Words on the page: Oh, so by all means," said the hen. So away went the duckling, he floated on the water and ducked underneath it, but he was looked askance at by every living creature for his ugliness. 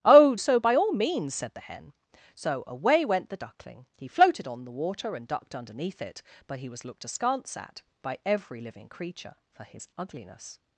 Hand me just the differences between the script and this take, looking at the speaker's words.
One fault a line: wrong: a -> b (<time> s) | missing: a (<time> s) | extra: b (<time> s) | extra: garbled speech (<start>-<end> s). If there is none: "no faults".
no faults